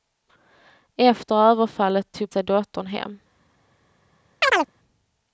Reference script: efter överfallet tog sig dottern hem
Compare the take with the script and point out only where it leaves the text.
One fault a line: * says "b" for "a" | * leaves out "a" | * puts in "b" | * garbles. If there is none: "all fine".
all fine